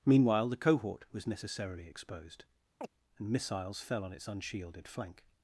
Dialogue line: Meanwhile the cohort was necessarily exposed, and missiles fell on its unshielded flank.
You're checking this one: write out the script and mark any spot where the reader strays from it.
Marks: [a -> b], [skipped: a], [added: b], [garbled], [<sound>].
Meanwhile the cohort was necessarily exposed, [chirp] and missiles fell on its unshielded flank.